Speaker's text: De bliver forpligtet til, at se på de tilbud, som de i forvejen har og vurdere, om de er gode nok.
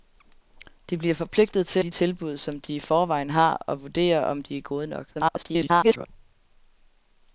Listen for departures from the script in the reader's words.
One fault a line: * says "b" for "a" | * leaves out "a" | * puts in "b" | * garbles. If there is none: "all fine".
* leaves out "at se på"
* garbles